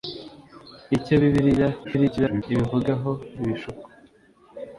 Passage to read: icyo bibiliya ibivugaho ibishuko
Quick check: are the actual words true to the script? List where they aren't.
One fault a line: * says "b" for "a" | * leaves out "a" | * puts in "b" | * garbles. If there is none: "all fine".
* garbles